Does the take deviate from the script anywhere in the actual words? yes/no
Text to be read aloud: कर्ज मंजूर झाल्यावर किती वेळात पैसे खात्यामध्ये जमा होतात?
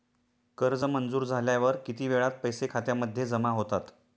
no